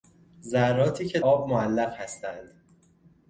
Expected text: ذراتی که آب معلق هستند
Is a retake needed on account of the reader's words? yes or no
no